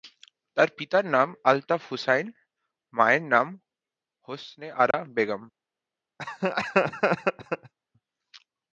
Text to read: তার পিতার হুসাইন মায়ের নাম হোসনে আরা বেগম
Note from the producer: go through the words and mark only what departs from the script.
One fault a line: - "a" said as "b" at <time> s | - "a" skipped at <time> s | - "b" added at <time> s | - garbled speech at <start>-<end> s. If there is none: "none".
- "নাম আলতাফ" added at 1.1 s